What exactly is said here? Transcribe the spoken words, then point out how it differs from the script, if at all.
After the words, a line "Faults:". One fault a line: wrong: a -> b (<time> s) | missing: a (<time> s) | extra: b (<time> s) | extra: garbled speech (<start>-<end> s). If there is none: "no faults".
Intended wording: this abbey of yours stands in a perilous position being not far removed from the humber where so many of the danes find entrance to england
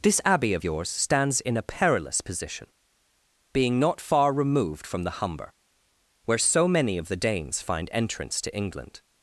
this abbey of yours stands in a perilous position being not far removed from the humber where so many of the danes find entrance to england
Faults:
no faults